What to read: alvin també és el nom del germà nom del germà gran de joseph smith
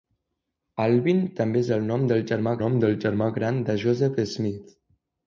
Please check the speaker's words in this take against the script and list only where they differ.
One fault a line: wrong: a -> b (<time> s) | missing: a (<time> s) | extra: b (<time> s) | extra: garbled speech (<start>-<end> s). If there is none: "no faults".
no faults